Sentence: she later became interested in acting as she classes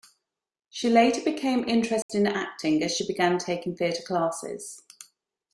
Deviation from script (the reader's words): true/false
true